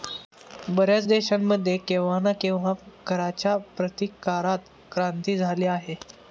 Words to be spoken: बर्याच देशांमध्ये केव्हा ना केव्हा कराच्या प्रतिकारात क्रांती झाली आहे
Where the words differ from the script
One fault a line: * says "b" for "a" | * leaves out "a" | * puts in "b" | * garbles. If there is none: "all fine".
all fine